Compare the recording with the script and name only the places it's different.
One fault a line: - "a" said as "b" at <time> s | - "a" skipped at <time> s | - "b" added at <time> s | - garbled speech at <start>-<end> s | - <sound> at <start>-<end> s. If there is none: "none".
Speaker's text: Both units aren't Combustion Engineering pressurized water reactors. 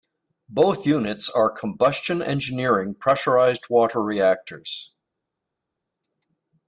- "aren't" said as "are" at 1.3 s